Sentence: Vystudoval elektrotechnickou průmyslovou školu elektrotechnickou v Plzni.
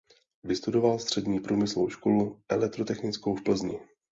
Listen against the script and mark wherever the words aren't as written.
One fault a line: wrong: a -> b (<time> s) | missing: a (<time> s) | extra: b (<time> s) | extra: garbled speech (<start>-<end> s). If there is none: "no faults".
wrong: elektrotechnickou -> střední (1.0 s)